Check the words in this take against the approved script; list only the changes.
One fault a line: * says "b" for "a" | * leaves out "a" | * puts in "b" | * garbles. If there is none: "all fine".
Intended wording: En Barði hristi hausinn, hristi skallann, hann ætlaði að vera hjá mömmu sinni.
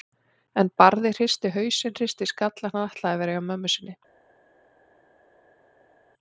all fine